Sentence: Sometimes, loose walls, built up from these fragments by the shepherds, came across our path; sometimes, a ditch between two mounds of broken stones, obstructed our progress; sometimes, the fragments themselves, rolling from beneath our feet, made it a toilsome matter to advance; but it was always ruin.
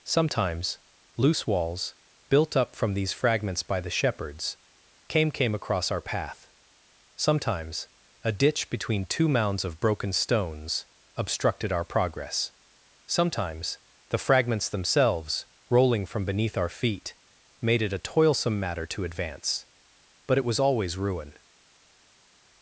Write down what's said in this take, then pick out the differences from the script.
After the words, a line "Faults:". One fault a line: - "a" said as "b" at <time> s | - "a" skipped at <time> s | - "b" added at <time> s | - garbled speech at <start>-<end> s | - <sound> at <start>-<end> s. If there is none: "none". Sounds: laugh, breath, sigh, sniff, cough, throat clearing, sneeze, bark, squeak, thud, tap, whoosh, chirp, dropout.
Sometimes, loose walls, built up from these fragments by the shepherds, came came across our path; sometimes, a ditch between two mounds of broken stones, obstructed our progress; sometimes, the fragments themselves, rolling from beneath our feet, made it a toilsome matter to advance; but it was always ruin.
Faults:
- "came" added at 5.3 s